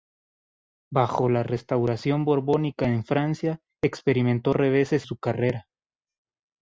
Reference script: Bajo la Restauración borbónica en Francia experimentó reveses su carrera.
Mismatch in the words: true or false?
false